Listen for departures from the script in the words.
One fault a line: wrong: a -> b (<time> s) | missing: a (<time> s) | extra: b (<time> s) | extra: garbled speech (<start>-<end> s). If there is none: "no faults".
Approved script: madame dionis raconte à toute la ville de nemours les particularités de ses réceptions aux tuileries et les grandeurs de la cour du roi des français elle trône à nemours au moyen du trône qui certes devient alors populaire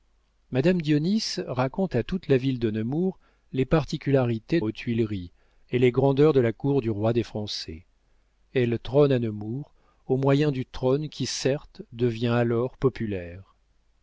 missing: de ses réceptions (4.6 s)